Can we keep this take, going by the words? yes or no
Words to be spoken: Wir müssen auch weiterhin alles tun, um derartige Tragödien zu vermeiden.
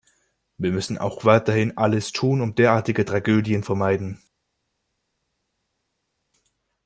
no